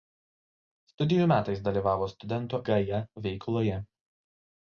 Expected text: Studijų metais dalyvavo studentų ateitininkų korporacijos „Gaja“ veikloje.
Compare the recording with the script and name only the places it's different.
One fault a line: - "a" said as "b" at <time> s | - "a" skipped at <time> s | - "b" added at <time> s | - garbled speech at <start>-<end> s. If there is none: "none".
- "ateitininkų korporacijos" skipped at 2.6 s